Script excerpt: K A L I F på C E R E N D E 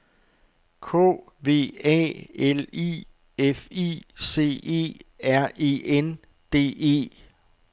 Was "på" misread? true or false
true